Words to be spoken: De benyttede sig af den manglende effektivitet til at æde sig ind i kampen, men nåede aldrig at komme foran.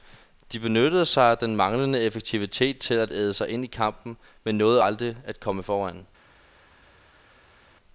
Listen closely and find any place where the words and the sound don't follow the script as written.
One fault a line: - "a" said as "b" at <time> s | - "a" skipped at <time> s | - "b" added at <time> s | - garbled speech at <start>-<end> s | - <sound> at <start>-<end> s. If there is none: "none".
none